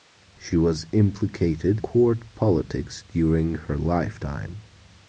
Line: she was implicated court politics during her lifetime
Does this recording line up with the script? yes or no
yes